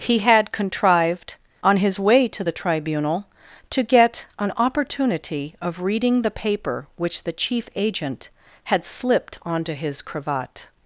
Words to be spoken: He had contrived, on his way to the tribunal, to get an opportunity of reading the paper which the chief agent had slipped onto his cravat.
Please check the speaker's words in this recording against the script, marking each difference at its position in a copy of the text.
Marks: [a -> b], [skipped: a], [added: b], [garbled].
He had contrived, on his way to the tribunal, to get an opportunity of reading the paper which the chief agent had slipped onto his cravat.